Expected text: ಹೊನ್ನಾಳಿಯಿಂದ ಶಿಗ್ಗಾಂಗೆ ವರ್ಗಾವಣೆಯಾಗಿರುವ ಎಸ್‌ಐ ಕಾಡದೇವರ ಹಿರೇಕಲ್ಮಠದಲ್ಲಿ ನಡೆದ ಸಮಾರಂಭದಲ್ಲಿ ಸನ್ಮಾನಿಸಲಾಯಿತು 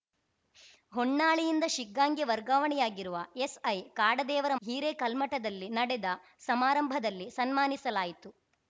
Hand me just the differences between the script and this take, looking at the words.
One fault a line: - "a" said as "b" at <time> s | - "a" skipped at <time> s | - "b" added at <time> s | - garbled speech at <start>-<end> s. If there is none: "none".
none